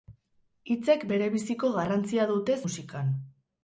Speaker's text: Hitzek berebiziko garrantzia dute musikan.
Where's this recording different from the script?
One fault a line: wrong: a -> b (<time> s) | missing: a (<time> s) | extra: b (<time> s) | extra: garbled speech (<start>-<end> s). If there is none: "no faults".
no faults